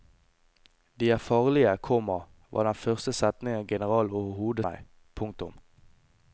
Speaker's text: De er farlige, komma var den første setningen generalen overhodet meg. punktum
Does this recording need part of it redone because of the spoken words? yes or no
no